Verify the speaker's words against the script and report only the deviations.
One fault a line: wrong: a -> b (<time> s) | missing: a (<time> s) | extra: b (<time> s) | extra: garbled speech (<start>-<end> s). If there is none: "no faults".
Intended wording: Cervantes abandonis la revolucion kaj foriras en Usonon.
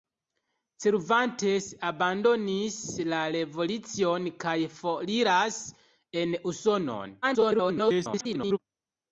extra: garbled speech (7.2-8.6 s)